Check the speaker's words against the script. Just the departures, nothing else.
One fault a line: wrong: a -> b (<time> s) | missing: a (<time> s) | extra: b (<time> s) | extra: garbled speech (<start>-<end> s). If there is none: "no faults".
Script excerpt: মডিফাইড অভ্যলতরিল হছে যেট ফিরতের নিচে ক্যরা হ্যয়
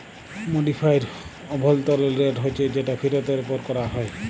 extra: রেট (2.2 s)
wrong: নিচে -> উপর (3.4 s)